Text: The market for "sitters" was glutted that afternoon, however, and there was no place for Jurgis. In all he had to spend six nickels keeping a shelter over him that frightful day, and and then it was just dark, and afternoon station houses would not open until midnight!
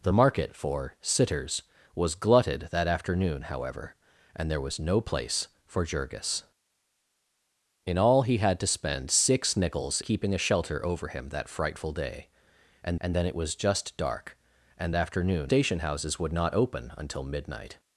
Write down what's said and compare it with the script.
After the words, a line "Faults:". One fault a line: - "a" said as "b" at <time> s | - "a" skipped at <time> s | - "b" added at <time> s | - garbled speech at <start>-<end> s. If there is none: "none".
The market for "sitters" was glutted that afternoon, however, and there was no place for Jurgis. In all he had to spend six nickels keeping a shelter over him that frightful day, and and then it was just dark, and afternoon station houses would not open until midnight!
Faults:
none